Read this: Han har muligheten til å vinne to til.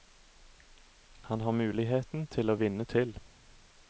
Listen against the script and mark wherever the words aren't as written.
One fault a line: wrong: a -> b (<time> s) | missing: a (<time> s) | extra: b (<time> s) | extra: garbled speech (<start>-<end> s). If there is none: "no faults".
missing: to (2.9 s)